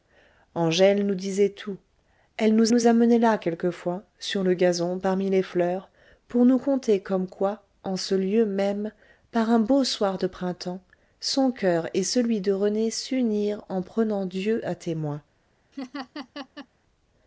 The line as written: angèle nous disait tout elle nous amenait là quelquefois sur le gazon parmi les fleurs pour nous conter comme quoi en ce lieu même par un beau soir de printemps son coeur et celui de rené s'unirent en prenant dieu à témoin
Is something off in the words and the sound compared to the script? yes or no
yes